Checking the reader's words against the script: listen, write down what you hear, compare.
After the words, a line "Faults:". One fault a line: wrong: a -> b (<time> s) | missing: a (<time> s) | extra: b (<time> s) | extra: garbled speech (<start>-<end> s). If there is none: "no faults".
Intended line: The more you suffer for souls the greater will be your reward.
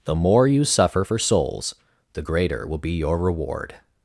The more you suffer for souls the greater will be your reward.
Faults:
no faults